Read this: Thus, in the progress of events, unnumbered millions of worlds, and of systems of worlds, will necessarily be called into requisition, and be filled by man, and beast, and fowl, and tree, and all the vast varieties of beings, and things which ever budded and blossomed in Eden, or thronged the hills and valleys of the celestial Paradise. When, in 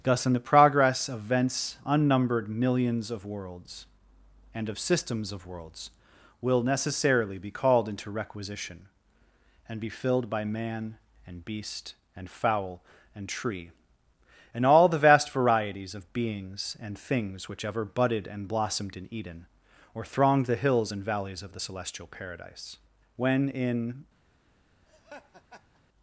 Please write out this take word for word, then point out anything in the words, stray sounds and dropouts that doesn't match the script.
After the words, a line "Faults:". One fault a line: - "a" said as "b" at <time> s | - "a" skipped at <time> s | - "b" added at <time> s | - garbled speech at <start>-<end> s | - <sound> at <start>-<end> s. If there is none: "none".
Thus, in the progress of events, unnumbered millions of worlds, and of systems of worlds, will necessarily be called into requisition, and be filled by man, and beast, and fowl, and tree, and all the vast varieties of beings, and things which ever budded and blossomed in Eden, or thronged the hills and valleys of the celestial Paradise. When, in
Faults:
- laugh at 24.9-25.8 s